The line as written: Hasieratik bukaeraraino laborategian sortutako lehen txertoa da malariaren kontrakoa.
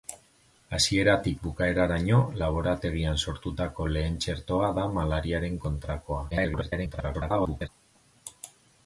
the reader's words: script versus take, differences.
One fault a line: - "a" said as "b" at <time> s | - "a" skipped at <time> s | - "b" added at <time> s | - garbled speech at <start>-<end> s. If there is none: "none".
- garbled speech at 6.3-7.7 s